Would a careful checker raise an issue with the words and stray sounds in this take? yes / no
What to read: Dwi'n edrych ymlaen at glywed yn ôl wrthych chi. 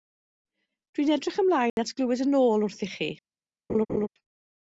yes